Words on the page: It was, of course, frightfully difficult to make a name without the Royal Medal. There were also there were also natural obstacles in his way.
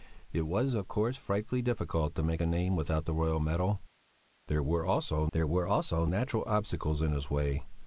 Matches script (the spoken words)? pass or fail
pass